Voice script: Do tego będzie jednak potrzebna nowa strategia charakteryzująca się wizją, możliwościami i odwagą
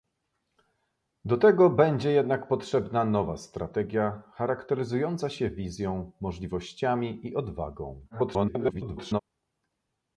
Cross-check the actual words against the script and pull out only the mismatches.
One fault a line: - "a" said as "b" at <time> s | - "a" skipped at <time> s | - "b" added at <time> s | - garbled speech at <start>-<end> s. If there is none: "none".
- garbled speech at 8.1-9.2 s